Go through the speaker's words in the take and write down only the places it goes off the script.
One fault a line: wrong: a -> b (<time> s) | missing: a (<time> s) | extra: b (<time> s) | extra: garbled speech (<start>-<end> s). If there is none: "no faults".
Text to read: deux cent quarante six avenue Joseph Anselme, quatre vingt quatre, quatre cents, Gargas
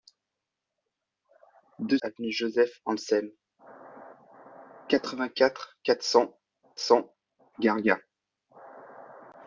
missing: cent quarante six (2.0 s)
extra: cents (6.8 s)